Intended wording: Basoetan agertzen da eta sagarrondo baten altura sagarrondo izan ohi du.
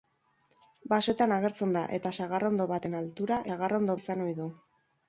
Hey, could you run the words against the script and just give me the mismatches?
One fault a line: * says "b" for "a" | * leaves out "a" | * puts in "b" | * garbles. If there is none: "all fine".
all fine